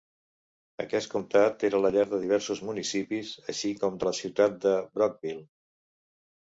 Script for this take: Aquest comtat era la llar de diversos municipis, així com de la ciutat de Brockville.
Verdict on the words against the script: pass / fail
pass